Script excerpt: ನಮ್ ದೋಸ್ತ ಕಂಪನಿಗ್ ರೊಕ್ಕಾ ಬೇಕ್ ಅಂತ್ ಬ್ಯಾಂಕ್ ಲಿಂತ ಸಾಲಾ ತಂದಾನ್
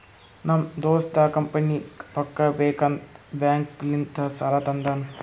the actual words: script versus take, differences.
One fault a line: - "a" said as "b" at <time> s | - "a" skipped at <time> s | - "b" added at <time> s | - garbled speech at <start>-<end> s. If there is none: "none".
none